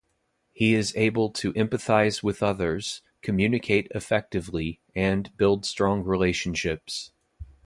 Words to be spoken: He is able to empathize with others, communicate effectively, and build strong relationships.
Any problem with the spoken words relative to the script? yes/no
no